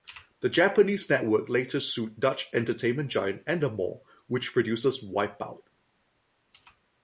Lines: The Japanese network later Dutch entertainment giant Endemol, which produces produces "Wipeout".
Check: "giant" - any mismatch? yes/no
no